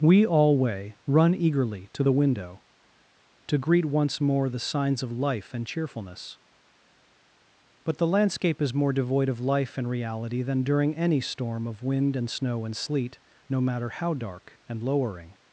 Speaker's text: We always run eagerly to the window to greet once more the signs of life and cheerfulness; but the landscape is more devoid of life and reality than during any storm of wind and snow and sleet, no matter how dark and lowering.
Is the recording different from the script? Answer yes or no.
yes